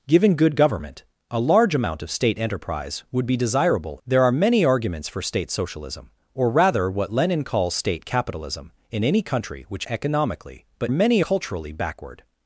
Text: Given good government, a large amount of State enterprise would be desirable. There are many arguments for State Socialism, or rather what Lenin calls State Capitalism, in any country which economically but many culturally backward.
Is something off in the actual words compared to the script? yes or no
no